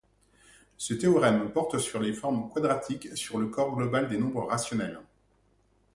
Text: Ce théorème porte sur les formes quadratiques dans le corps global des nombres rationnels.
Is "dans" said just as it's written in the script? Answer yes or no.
no